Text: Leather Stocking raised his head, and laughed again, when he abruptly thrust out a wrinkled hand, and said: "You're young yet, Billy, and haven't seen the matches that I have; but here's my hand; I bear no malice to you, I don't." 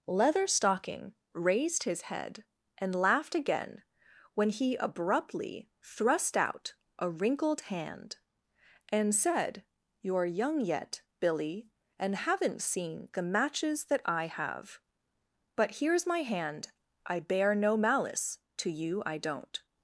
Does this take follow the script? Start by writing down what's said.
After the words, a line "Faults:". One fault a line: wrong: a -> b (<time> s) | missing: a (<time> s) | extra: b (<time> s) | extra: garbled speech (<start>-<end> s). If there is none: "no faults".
Leather Stocking raised his head, and laughed again, when he abruptly thrust out a wrinkled hand, and said: "You're young yet, Billy, and haven't seen the matches that I have; but here's my hand; I bear no malice to you, I don't."
Faults:
no faults